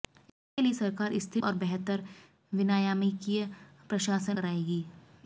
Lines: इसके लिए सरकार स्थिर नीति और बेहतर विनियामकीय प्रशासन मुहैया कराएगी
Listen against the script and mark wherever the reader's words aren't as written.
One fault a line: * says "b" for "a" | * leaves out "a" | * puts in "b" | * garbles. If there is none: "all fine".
* leaves out "नीति"
* leaves out "मुहैया"